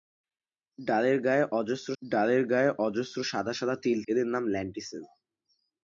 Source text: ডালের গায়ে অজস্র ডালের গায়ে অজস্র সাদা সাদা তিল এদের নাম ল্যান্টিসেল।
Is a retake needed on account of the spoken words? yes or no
no